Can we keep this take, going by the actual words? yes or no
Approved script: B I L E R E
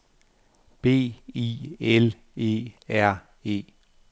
yes